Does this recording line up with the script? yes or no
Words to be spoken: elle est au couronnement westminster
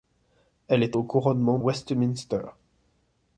yes